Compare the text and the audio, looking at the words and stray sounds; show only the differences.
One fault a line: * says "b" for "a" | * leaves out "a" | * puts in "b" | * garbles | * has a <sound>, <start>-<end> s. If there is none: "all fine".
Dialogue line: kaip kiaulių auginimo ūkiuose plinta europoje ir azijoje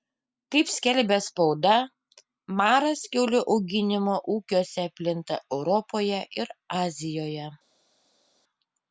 * puts in "skelbia spauda maras"